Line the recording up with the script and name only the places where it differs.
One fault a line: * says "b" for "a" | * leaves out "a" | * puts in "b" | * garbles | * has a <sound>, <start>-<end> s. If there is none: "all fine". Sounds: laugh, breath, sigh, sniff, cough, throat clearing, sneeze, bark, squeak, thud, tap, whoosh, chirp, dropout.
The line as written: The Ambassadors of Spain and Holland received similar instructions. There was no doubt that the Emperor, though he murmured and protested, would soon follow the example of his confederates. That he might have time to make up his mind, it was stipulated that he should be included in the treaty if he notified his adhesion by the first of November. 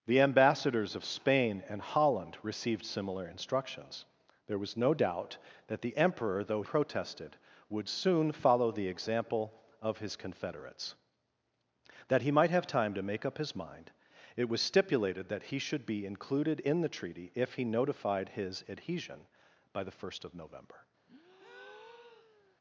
* leaves out "he murmured and"
* has a breath, 21.1-22.6 s